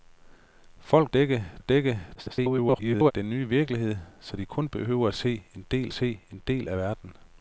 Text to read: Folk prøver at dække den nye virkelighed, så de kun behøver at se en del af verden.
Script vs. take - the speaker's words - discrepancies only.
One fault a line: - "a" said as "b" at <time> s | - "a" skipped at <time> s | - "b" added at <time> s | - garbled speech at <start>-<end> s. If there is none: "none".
- "prøver" said as "dække" at 1.1 s
- garbled speech at 2.2-3.1 s
- "se en del" added at 5.9 s